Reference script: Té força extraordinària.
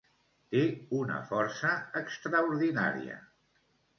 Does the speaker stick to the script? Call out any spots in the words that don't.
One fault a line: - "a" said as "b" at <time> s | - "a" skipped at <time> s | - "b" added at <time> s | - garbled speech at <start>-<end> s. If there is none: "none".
- "una" added at 1.0 s